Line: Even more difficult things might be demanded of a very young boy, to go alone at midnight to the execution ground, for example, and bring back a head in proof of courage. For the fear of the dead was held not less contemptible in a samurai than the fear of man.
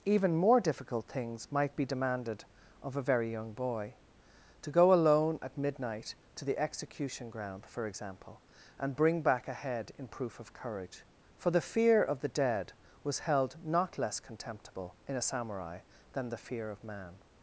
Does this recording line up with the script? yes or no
yes